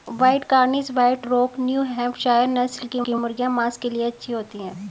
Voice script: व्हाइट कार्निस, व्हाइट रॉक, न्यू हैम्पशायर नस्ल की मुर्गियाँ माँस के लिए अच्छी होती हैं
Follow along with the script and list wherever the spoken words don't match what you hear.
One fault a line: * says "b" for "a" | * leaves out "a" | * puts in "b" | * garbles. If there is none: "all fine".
* puts in "की"